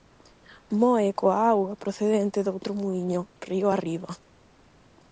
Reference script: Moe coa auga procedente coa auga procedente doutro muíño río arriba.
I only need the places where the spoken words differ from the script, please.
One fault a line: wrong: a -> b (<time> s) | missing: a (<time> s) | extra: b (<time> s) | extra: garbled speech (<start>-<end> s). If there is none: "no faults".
missing: coa auga procedente (2.4 s)